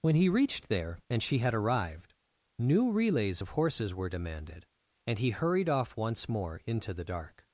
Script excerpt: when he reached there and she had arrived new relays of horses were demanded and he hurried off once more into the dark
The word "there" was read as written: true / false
true